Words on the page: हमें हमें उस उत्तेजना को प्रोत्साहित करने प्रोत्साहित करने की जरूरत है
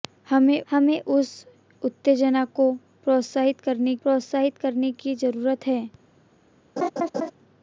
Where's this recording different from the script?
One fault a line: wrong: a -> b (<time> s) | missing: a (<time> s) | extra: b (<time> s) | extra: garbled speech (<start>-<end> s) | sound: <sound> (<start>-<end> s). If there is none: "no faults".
sound: laugh (6.8-7.3 s)